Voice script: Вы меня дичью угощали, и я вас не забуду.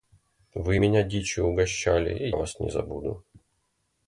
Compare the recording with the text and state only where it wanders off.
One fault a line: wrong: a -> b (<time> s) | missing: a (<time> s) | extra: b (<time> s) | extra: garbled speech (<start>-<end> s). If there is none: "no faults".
missing: я (2.3 s)